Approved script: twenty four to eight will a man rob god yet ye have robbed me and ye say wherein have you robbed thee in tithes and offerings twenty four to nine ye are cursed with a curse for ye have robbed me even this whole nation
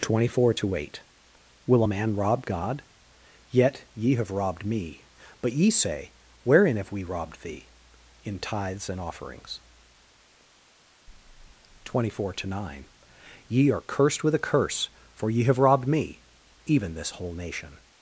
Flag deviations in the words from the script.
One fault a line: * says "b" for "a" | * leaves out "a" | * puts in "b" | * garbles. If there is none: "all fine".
* says "but" for "and"
* says "we" for "you"